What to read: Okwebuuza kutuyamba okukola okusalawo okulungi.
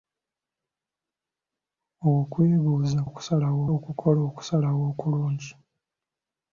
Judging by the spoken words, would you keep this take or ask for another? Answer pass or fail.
fail